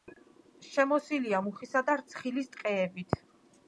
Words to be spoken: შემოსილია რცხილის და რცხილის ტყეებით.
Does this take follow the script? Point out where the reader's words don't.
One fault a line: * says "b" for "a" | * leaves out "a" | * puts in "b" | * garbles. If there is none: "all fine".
* says "მუხისა" for "რცხილის"